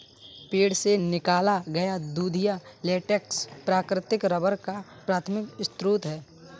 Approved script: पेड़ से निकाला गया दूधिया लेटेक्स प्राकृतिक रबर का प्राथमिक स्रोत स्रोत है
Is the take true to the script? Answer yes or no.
no